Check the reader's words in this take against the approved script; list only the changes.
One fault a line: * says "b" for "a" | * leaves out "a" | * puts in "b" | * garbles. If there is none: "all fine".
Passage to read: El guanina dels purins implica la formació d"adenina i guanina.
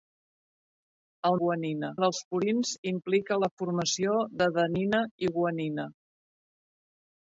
all fine